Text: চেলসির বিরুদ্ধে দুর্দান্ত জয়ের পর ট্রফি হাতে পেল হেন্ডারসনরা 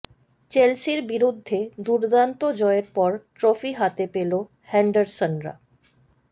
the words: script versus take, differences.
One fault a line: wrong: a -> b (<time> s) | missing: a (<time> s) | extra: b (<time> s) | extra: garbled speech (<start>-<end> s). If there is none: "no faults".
no faults